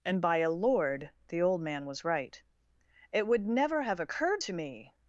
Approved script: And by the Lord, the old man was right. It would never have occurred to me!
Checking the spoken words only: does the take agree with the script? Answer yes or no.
no